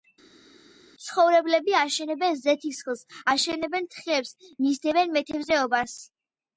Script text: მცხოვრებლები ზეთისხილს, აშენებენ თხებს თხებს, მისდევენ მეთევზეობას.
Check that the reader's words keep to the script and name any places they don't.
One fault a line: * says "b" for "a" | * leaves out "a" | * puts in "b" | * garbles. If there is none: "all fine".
* puts in "აშენებენ"
* leaves out "თხებს"